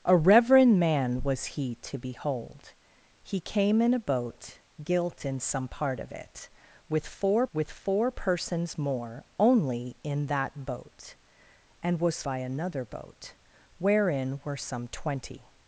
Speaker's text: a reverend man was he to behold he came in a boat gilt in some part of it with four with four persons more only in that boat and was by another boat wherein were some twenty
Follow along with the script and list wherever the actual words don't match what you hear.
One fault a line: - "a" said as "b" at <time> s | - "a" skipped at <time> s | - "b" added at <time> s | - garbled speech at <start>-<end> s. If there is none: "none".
none